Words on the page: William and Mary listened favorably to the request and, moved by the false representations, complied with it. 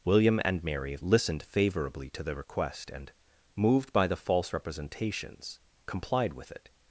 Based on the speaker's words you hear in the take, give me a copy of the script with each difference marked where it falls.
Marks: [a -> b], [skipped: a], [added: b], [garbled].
William and Mary listened favorably to the request and, moved by the false representations, complied with it.